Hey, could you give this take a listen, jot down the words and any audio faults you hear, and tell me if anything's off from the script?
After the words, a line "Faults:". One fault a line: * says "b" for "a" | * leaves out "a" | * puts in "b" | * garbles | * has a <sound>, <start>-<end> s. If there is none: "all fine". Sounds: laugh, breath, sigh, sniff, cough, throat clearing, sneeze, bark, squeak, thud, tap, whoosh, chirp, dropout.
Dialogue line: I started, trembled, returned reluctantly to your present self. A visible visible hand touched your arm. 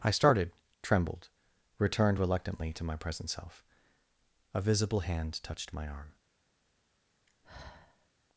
I started, trembled, returned reluctantly to my present self. A visible hand touched my arm.
Faults:
* says "my" for "your"
* leaves out "visible"
* says "my" for "your"
* has a sigh, 7.3-8.1 s